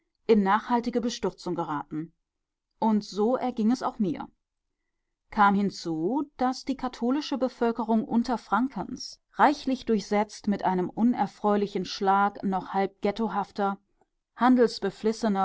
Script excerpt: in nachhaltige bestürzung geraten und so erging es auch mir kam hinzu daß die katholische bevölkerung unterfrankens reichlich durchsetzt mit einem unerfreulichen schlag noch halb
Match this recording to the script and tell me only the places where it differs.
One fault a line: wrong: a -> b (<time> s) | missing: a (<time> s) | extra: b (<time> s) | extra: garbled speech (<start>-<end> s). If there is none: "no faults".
no faults